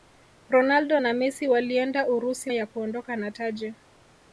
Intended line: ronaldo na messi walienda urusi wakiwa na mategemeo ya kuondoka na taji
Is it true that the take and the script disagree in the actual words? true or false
true